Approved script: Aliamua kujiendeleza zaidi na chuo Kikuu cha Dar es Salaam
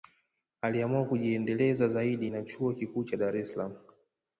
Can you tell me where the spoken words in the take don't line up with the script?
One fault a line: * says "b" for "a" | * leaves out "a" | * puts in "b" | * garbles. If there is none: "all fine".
all fine